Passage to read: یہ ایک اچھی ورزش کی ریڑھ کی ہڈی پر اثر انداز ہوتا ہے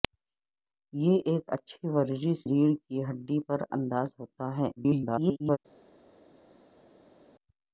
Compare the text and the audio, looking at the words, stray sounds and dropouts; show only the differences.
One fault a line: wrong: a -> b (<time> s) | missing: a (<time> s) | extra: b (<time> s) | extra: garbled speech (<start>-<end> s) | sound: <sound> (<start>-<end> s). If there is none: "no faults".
missing: کی (2.4 s)
missing: اثر (3.6 s)
extra: garbled speech (4.8-5.6 s)